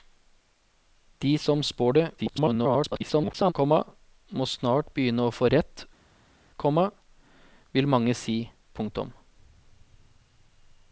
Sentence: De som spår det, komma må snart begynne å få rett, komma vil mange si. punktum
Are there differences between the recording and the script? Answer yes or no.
yes